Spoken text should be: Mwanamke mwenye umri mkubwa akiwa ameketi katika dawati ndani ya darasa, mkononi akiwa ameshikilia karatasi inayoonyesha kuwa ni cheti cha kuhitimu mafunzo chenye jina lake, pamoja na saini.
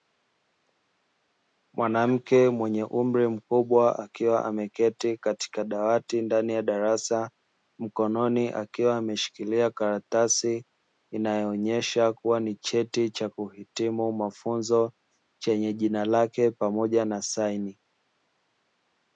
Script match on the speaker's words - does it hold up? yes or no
yes